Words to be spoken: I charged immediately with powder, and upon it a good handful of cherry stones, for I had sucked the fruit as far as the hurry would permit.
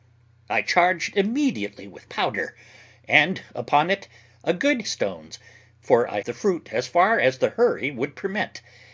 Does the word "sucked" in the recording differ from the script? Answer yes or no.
yes